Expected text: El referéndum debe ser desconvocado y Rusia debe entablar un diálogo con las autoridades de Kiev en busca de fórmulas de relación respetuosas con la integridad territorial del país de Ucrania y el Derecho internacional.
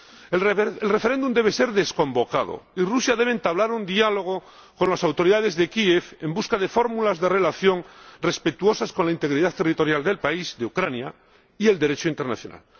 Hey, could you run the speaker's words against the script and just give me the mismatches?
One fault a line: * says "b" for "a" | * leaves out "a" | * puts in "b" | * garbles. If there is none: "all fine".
all fine